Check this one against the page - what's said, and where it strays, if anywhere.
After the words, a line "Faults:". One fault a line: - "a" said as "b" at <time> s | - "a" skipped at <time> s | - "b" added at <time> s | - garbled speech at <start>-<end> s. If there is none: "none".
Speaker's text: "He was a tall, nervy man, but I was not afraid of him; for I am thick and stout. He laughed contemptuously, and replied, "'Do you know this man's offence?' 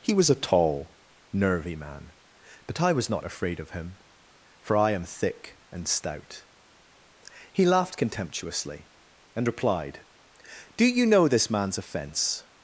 "He was a tall, nervy man, but I was not afraid of him; for I am thick and stout. He laughed contemptuously, and replied, "'Do you know this man's offence?'
Faults:
none